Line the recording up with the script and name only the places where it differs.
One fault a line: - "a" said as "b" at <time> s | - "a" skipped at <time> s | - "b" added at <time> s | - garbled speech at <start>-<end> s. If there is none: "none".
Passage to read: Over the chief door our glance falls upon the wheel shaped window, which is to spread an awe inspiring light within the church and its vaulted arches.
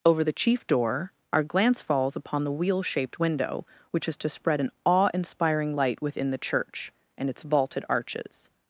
none